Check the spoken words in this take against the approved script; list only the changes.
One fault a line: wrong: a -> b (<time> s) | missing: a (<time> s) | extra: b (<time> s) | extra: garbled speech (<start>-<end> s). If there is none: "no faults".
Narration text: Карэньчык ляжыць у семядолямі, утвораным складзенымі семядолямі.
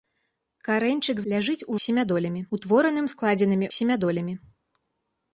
no faults